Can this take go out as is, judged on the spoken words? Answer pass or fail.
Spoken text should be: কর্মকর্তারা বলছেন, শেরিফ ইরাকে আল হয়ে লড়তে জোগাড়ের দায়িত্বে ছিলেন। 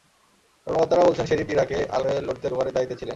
pass